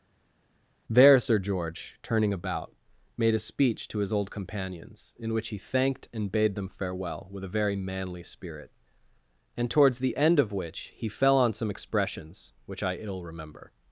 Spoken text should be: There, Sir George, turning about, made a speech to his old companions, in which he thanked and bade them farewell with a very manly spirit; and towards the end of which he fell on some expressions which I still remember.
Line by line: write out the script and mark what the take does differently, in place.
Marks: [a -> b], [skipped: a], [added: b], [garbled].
There, Sir George, turning about, made a speech to his old companions, in which he thanked and bade them farewell with a very manly spirit; and towards the end of which he fell on some expressions which I [still -> ill] remember.